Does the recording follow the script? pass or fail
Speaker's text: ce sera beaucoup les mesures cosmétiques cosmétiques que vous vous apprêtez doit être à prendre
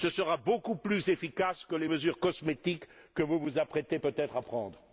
fail